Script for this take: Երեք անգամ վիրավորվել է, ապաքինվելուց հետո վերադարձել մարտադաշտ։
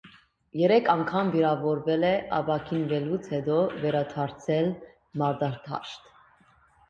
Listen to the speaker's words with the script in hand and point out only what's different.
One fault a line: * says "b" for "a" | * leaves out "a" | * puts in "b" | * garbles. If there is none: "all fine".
all fine